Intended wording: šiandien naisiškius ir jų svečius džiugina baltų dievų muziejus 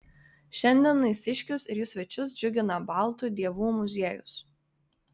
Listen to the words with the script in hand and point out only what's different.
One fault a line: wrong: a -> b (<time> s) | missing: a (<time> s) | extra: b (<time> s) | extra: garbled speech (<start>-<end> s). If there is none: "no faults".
no faults